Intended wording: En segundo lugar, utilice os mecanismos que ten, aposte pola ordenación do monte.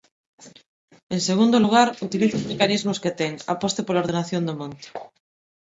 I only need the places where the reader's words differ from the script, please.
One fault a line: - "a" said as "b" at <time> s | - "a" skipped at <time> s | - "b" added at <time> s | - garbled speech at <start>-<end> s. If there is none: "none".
none